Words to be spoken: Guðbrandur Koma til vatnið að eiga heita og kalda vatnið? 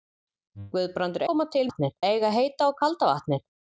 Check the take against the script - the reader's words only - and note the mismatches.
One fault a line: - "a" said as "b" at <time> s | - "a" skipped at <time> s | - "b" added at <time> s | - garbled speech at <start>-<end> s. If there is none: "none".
none